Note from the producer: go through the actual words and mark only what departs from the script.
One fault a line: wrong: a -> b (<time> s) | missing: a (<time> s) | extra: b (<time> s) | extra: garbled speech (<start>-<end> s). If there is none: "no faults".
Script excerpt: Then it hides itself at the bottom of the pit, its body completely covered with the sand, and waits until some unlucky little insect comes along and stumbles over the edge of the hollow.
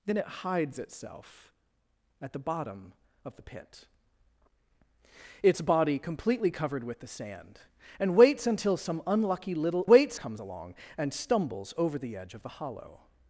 wrong: insect -> waits (9.9 s)